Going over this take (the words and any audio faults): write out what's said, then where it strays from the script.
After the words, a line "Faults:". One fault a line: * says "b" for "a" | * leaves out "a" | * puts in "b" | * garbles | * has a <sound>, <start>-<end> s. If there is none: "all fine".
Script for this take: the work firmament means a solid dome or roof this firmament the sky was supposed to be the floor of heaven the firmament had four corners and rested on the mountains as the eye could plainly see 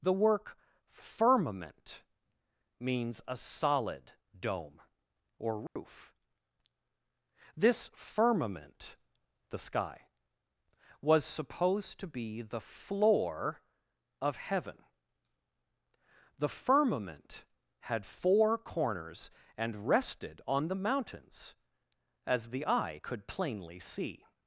the work firmament means a solid dome or roof this firmament the sky was supposed to be the floor of heaven the firmament had four corners and rested on the mountains as the eye could plainly see
Faults:
* has a dropout, 5.7-5.8 s